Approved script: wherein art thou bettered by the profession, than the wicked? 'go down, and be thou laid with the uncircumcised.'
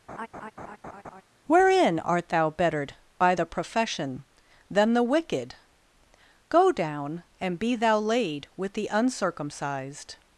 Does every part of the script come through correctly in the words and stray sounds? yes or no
no